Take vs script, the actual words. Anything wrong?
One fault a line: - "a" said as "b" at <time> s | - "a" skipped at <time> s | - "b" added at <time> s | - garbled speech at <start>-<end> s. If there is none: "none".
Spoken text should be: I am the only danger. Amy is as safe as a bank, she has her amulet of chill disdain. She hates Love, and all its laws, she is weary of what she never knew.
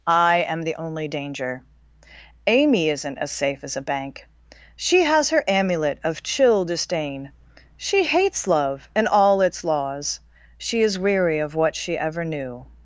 - "is" said as "isn't" at 2.9 s
- "never" said as "ever" at 12.0 s